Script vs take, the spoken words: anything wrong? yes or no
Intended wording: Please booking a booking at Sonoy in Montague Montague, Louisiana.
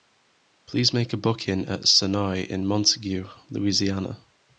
yes